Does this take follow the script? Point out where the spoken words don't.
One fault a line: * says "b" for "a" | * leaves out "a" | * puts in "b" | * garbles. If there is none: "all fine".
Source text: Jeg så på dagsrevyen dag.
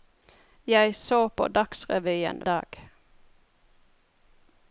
all fine